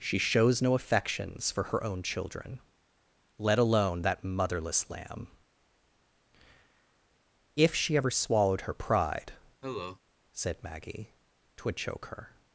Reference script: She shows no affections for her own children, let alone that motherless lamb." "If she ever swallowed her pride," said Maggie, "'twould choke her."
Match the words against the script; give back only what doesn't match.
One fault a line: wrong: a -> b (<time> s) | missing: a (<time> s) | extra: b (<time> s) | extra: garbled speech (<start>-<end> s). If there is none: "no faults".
no faults